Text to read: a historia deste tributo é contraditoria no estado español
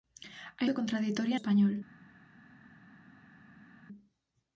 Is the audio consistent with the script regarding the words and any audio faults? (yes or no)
no